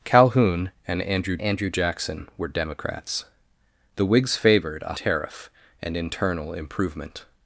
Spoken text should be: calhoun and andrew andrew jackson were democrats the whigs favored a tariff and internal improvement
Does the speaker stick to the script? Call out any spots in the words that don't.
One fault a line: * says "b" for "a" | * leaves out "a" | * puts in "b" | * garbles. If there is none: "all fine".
all fine